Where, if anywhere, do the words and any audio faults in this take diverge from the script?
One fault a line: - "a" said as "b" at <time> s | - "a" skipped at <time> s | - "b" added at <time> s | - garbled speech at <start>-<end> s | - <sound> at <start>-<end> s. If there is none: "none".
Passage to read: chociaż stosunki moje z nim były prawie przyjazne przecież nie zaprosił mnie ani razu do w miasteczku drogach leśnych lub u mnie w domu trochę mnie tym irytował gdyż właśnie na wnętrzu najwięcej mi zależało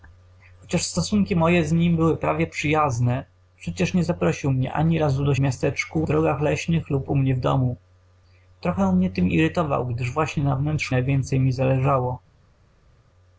none